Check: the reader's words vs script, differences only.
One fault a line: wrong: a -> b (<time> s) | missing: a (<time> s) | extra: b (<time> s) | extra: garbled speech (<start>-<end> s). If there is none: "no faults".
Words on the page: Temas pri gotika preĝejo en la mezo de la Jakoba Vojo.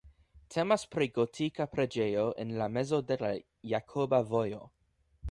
no faults